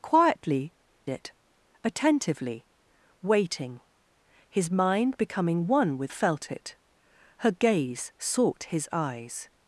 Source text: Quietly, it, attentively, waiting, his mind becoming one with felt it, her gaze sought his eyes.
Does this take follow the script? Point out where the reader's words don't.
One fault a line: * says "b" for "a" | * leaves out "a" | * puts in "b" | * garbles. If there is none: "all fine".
all fine